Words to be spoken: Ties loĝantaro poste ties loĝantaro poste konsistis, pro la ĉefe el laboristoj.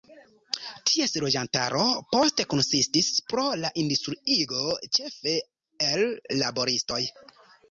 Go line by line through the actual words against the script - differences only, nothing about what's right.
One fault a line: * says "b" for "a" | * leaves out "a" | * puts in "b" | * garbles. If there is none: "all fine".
* leaves out "ties loĝantaro poste"
* puts in "industriigo"